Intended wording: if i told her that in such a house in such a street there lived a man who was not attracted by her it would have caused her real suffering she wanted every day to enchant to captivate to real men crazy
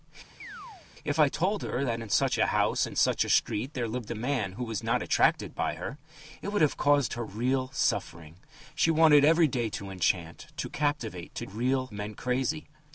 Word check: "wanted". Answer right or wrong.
right